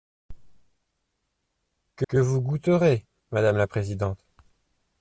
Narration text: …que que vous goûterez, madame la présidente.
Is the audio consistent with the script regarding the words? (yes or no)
yes